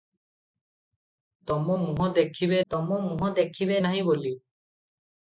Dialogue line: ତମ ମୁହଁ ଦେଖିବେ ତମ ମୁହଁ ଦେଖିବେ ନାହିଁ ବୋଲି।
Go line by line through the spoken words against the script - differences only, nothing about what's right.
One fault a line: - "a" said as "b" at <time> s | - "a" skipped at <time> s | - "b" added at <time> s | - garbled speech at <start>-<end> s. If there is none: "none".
none